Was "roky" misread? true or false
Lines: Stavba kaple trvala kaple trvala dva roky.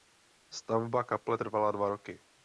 false